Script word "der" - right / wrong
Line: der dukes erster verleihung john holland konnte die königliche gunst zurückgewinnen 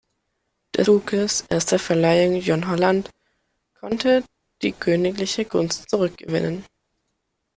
right